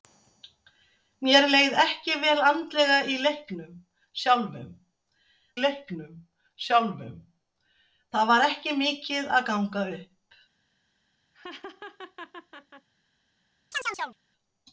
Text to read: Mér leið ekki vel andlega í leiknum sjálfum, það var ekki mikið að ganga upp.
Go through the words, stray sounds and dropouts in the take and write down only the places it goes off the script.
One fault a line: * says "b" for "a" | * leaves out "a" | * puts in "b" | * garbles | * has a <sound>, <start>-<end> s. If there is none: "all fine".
* puts in "leiknum sjálfum"
* has a laugh, 11.3-12.9 s
* has a chirp, 13.7-14.2 s